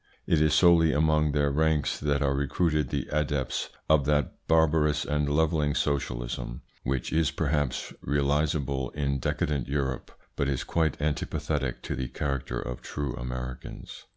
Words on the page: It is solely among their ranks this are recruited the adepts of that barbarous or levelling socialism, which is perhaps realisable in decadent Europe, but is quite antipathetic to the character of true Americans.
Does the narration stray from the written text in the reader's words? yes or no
yes